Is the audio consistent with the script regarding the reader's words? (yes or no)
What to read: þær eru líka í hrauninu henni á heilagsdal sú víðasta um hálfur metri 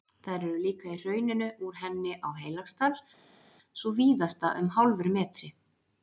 no